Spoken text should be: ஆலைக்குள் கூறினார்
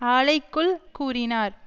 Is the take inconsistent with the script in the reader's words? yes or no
no